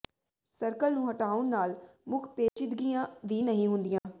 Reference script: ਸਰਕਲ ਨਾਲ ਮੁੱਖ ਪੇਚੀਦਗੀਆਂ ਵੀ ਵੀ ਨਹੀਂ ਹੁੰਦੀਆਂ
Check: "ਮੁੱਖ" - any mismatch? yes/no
no